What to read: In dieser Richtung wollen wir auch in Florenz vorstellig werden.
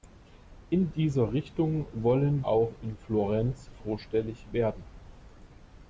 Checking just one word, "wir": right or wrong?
wrong